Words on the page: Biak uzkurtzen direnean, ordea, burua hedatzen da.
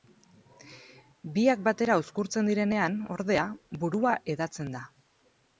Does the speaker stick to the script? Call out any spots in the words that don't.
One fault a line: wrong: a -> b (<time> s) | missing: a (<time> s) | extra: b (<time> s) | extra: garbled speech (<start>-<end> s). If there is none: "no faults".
extra: batera (1.7 s)